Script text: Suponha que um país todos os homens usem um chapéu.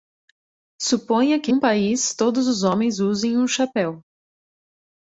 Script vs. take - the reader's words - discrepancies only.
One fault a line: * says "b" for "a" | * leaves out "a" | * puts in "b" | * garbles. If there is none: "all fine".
all fine